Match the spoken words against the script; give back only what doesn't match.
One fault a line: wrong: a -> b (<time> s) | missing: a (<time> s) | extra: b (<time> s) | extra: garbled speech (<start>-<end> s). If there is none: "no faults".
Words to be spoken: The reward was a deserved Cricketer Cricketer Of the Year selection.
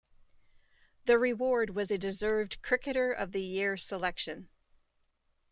missing: Cricketer (3.1 s)